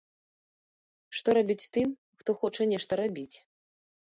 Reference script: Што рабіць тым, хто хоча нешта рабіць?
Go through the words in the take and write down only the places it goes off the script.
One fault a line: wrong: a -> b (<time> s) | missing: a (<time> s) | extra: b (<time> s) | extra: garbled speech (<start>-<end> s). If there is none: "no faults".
no faults